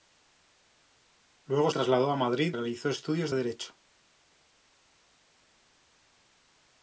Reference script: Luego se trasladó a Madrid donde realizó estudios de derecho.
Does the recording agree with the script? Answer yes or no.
no